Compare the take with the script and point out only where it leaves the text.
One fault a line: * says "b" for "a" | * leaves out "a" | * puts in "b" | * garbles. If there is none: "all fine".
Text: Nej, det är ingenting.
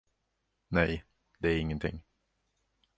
all fine